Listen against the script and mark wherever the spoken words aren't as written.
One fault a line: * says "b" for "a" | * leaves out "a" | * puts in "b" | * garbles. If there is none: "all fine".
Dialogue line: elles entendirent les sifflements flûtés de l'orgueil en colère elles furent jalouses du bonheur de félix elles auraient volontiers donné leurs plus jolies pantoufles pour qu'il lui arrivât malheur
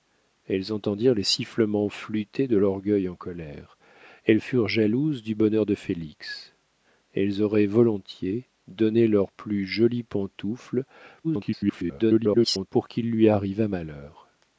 * garbles